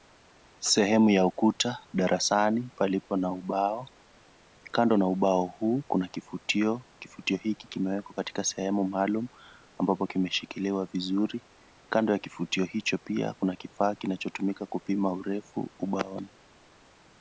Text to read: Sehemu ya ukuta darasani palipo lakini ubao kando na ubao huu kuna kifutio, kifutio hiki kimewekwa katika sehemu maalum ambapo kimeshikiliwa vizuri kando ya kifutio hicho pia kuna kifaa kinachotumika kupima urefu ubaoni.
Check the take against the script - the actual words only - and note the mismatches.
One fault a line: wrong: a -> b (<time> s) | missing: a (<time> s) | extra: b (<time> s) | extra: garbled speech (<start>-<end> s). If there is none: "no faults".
wrong: lakini -> na (3.2 s)